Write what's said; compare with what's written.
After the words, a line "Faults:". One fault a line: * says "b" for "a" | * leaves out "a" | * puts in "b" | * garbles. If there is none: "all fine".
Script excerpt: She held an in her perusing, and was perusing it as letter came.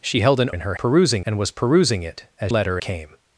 She held an in her perusing, and was perusing it as letter came.
Faults:
all fine